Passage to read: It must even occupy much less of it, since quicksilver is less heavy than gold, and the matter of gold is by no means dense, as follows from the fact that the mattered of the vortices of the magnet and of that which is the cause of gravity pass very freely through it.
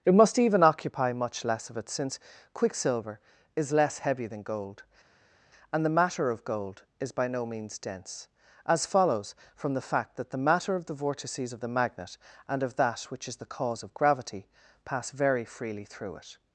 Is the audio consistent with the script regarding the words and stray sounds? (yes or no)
no